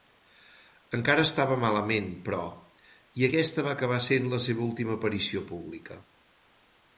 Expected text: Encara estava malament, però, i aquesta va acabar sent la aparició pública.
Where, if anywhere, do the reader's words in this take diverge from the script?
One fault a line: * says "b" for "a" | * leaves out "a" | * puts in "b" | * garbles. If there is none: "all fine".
* puts in "seva última"